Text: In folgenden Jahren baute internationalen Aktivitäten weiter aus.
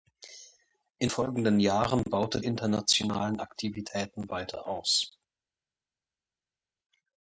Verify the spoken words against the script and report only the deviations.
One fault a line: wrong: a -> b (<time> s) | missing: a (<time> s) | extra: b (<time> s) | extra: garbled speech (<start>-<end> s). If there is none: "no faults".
no faults